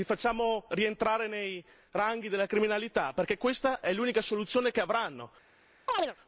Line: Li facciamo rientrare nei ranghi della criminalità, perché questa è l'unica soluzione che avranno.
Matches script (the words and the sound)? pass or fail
fail